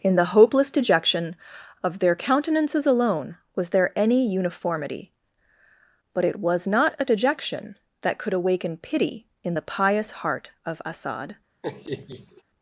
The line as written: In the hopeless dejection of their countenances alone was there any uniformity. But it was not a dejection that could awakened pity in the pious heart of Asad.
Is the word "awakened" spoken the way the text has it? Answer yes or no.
no